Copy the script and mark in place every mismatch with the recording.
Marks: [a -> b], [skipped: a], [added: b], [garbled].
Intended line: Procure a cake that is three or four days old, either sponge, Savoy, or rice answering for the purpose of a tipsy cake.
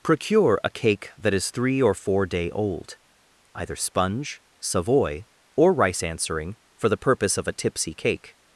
Procure a cake that is three or four [days -> day] old, either sponge, Savoy, or rice answering for the purpose of a tipsy cake.